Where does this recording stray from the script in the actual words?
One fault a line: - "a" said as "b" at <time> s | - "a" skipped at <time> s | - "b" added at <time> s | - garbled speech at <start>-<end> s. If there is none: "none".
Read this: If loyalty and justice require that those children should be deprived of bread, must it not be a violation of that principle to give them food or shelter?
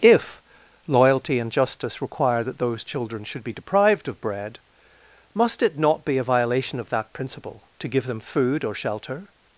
none